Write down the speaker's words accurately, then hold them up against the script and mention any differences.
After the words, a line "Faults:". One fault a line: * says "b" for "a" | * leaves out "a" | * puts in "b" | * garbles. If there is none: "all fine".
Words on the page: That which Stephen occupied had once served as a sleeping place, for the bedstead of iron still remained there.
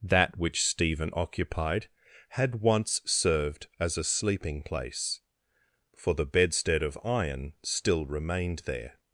That which Stephen occupied had once served as a sleeping place, for the bedstead of iron still remained there.
Faults:
all fine